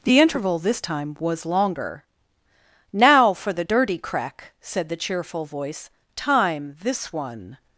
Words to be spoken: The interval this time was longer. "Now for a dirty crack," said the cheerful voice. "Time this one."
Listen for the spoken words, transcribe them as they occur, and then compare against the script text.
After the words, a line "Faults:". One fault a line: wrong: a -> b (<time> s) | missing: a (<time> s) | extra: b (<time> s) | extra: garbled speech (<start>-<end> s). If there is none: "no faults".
The interval this time was longer. "Now for the dirty crack," said the cheerful voice. "Time this one."
Faults:
wrong: a -> the (3.5 s)